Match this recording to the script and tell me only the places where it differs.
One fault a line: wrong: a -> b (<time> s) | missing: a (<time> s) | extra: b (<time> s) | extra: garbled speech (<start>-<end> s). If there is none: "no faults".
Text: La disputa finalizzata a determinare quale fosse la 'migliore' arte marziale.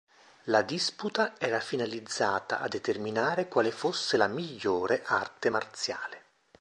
extra: era (1.4 s)